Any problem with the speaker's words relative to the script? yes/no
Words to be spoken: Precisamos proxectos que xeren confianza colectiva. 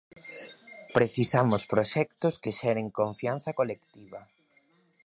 no